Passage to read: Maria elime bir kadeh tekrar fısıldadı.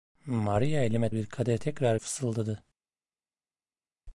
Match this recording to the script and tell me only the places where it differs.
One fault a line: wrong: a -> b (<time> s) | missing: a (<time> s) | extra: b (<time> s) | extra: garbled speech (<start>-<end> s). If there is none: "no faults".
no faults